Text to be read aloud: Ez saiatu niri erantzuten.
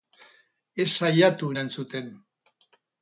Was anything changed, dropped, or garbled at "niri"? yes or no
yes